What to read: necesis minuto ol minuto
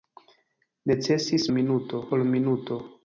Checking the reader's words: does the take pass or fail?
pass